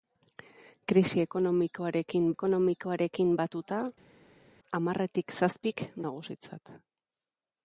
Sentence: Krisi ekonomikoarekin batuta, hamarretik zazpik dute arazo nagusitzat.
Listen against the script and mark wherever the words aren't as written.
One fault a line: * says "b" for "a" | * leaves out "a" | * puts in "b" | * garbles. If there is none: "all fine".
* puts in "ekonomikoarekin"
* leaves out "dute arazo"